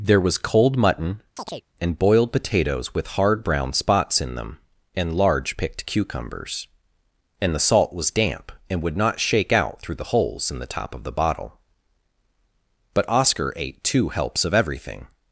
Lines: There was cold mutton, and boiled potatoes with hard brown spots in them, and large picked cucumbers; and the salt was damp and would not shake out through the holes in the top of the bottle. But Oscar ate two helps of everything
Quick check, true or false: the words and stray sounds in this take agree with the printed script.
false